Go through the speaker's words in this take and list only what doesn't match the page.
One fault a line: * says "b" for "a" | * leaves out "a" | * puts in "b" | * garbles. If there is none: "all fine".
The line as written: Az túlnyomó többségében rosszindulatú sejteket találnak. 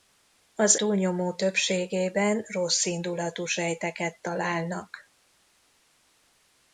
all fine